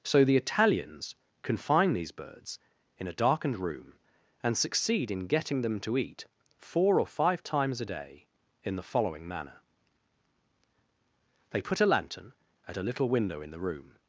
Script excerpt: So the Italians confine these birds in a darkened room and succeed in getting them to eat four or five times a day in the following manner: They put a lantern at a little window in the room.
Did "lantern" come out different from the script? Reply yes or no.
no